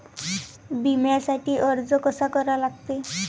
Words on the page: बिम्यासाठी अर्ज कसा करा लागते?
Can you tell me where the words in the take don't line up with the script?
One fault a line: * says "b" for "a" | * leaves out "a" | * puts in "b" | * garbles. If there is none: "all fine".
all fine